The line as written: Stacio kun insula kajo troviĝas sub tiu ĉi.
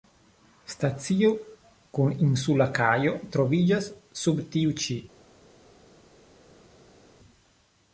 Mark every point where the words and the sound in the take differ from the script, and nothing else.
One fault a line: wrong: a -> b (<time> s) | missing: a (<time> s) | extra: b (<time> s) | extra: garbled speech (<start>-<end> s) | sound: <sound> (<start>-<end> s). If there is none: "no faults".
no faults